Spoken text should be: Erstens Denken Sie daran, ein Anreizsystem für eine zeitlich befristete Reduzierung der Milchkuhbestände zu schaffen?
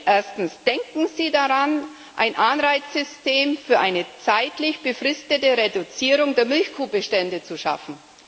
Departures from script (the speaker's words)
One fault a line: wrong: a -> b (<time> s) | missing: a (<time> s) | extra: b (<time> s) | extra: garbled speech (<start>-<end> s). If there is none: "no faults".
no faults